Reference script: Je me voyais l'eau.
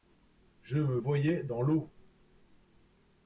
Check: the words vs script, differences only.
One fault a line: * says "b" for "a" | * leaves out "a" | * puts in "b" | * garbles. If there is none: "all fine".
* puts in "dans"